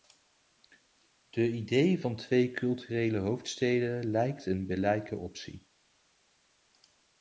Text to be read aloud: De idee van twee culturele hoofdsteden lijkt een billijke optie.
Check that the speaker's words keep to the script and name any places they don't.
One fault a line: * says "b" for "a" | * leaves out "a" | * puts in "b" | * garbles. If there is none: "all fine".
all fine